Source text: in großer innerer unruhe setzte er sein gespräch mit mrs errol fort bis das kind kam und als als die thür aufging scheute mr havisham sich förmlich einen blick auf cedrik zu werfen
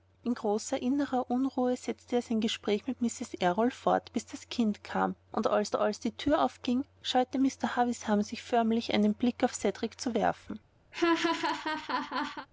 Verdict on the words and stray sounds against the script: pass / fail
fail